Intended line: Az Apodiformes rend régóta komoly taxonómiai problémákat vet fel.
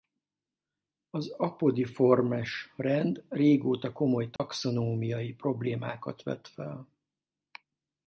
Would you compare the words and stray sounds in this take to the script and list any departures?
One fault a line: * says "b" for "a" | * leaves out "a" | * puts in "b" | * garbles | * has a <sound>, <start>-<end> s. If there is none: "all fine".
* has a dropout, 4.4-4.4 s